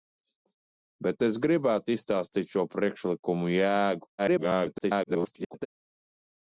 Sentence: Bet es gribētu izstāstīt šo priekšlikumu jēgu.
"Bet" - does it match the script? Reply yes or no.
yes